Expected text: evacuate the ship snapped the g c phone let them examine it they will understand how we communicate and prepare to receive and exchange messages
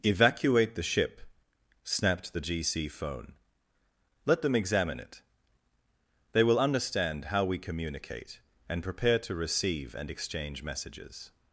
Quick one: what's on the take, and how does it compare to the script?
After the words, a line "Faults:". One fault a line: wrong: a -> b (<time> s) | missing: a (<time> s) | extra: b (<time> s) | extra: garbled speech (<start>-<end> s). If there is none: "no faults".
evacuate the ship snapped the g c phone let them examine it they will understand how we communicate and prepare to receive and exchange messages
Faults:
no faults